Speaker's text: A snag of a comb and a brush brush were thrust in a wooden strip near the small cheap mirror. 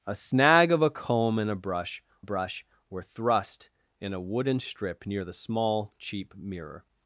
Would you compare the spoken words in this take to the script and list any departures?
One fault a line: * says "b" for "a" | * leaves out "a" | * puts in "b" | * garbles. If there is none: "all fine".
all fine